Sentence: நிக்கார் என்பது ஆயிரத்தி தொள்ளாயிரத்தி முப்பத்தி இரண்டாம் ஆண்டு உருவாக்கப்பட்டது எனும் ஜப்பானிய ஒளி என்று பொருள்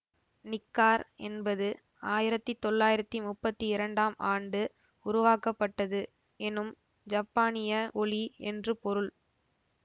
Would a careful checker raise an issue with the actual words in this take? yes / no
no